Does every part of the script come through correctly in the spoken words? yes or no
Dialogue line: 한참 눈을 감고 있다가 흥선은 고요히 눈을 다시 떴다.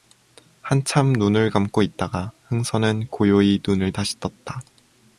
yes